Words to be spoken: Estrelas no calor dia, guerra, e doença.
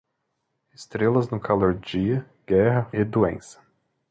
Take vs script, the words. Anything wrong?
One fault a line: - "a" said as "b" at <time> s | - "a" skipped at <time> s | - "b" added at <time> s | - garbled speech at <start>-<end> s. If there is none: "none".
none